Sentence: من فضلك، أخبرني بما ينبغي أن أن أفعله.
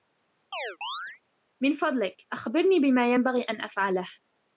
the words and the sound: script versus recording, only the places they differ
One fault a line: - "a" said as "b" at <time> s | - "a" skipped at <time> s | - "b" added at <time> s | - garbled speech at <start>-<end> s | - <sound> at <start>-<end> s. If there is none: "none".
- chirp at 0.5-1.2 s
- "أن" skipped at 3.6 s